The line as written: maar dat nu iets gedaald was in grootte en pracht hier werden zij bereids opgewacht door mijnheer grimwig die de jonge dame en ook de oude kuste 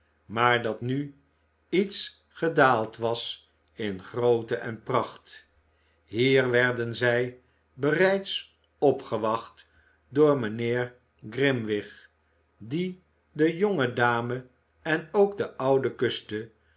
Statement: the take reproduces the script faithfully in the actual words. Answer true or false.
true